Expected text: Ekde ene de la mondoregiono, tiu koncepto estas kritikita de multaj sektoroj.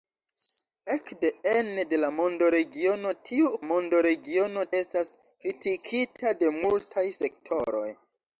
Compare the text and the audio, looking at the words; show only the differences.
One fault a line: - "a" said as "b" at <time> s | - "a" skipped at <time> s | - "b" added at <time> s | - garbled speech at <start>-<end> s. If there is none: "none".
- "koncepto" said as "mondoregiono" at 3.7 s